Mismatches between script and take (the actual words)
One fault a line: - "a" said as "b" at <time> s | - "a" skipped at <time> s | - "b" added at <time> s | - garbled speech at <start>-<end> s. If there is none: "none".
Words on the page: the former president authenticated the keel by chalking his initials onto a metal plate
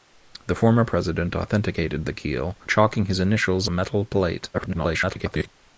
- "by" skipped at 2.6 s
- "onto" skipped at 3.7 s
- garbled speech at 4.5-5.5 s